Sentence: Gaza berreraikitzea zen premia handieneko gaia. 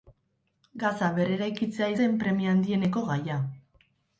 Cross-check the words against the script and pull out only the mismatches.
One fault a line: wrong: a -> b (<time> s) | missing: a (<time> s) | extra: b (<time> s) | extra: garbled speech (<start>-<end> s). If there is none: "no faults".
no faults